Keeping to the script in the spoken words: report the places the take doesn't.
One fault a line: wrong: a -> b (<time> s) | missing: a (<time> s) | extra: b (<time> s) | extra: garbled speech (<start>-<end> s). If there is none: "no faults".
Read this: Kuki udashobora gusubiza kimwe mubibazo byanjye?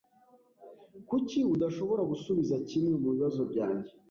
no faults